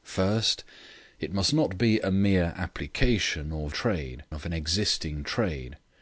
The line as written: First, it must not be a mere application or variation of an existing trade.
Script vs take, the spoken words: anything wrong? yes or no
yes